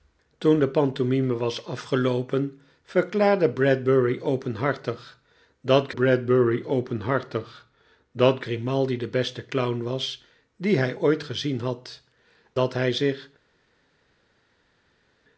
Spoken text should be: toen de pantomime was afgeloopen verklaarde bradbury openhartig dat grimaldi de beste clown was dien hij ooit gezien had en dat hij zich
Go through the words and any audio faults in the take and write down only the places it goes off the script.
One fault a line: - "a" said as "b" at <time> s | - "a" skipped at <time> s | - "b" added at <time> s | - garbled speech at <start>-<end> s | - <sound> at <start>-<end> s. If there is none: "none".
- "bradbury openhartig dat" added at 5.9 s
- "en" skipped at 12.0 s